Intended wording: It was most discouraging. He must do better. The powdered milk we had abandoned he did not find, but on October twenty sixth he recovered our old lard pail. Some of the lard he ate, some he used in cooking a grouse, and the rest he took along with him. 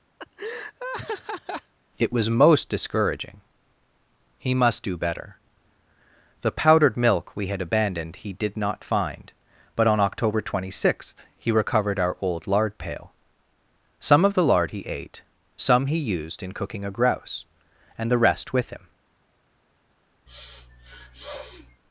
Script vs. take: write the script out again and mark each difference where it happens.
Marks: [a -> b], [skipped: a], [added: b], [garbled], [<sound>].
[laugh] It was most discouraging. He must do better. The powdered milk we had abandoned he did not find, but on October twenty sixth he recovered our old lard pail. Some of the lard he ate, some he used in cooking a grouse, and the rest [skipped: he took along] with him. [sniff]